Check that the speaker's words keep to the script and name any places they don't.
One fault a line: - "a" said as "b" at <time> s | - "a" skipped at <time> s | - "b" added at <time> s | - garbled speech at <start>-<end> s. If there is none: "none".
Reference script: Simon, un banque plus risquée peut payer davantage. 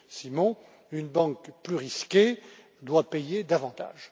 - "un" said as "une" at 0.9 s
- "peut" said as "doit" at 2.8 s